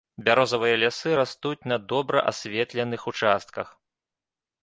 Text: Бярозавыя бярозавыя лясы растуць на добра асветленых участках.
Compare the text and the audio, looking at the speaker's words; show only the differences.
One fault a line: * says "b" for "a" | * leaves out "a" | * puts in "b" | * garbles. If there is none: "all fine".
* leaves out "бярозавыя"